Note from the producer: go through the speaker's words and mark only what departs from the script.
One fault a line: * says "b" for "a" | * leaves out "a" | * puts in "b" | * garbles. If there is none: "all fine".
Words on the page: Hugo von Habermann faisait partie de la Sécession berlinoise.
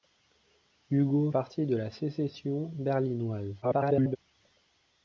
* leaves out "von Habermann faisait"
* garbles